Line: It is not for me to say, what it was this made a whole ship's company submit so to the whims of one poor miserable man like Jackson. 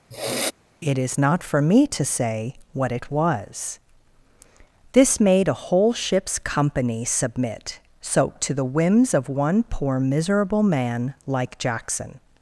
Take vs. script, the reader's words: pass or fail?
pass